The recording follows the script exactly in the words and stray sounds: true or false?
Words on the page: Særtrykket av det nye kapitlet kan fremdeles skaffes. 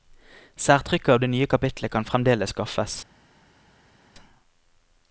true